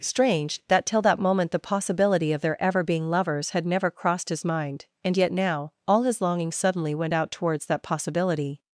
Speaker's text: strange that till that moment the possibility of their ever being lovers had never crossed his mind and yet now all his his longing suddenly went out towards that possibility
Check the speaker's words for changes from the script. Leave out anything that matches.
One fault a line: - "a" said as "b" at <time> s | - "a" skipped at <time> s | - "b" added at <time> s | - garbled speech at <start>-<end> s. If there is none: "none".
- "his" skipped at 6.2 s